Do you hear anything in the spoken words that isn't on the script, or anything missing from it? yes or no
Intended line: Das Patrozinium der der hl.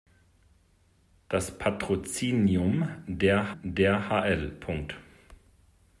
no